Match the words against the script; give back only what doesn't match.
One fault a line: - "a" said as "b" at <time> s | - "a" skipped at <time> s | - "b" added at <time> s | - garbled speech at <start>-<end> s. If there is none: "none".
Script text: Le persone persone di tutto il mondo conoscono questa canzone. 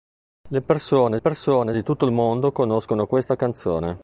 none